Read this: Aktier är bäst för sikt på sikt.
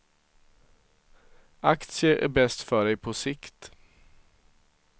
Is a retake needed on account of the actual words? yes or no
yes